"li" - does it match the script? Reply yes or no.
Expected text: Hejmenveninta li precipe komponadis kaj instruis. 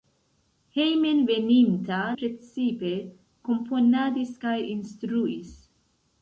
no